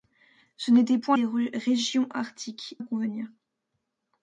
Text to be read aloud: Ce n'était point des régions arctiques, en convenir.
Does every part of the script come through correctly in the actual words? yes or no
yes